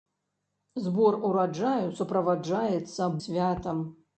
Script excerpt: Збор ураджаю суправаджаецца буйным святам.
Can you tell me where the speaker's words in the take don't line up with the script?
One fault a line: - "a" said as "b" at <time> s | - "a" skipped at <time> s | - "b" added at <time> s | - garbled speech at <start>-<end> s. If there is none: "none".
- "буйным" skipped at 3.1 s